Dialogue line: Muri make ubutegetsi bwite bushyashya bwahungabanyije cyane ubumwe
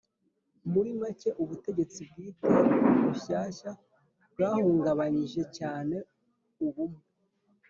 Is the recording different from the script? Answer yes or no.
no